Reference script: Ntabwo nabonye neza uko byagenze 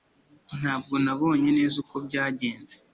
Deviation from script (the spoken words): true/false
false